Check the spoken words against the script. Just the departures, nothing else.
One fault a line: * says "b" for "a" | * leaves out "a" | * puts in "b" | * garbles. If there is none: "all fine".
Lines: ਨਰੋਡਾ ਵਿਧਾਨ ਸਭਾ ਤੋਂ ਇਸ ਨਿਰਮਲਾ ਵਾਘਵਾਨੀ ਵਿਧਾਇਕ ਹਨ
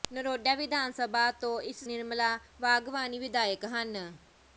all fine